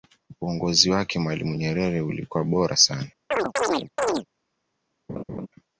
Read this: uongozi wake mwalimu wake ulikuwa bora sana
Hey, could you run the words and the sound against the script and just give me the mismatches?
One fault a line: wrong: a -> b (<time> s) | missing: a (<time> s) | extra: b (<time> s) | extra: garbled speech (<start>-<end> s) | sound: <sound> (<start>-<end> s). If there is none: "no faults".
wrong: wake -> nyerere (1.5 s)
sound: chirp (3.3-4.3 s)
sound: laugh (5.1-5.5 s)